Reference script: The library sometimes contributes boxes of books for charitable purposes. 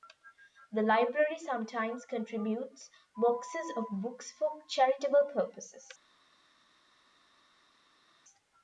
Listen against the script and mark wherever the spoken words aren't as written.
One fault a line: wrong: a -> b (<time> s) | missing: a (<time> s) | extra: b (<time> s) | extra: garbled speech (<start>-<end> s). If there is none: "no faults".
no faults